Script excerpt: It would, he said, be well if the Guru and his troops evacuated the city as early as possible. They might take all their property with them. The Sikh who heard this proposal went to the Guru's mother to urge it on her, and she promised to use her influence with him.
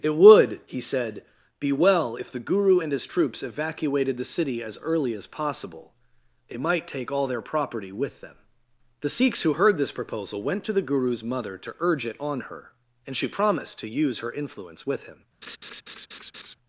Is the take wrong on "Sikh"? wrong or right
wrong